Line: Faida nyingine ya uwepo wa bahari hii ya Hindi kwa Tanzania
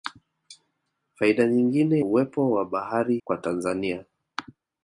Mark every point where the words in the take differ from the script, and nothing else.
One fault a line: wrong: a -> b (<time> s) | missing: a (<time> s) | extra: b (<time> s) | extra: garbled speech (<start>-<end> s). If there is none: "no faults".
missing: ya (2.0 s)
missing: hii ya Hindi (3.2 s)